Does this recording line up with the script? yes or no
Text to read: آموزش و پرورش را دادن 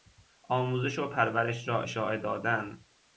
no